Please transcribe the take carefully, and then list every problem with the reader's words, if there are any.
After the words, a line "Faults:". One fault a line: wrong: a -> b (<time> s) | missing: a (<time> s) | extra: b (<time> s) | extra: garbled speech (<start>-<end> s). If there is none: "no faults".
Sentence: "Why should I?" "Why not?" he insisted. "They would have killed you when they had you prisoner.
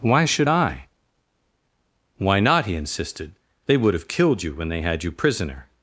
"Why should I?" "Why not?" he insisted. "They would have killed you when they had you prisoner.
Faults:
no faults